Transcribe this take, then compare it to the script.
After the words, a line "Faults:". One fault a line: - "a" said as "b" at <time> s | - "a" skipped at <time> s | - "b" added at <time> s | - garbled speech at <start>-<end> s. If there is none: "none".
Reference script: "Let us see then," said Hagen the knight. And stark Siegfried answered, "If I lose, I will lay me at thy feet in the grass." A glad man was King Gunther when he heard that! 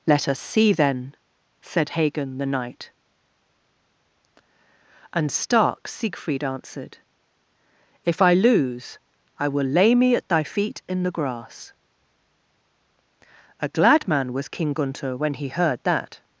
"Let us see then," said Hagen the knight. And stark Siegfried answered, "If I lose, I will lay me at thy feet in the grass." A glad man was King Gunther when he heard that!
Faults:
none